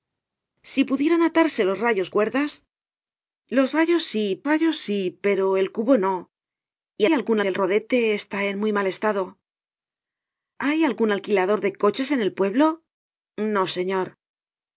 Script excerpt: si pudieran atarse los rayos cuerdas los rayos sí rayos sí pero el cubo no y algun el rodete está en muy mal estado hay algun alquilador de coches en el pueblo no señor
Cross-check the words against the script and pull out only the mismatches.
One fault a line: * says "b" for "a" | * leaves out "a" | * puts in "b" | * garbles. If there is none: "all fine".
all fine